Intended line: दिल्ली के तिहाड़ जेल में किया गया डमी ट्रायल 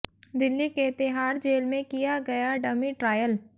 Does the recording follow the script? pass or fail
pass